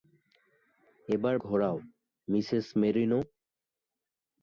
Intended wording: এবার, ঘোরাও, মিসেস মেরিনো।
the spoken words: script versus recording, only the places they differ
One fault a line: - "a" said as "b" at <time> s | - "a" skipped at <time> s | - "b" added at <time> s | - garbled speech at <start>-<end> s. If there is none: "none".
none